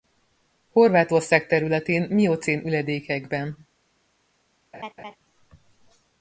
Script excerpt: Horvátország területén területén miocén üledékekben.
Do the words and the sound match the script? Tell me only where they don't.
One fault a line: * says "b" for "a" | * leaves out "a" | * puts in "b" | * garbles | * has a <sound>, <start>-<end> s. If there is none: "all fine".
* leaves out "területén"
* has a laugh, 4.7-5.2 s